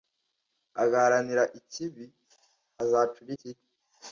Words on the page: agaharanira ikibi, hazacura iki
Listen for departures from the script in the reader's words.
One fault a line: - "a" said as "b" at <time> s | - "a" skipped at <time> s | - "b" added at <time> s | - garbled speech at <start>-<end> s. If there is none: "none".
none